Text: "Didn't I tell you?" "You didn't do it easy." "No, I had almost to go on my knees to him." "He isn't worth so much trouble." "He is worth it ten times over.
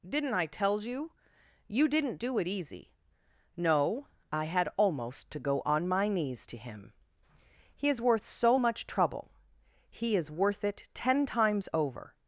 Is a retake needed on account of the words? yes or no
yes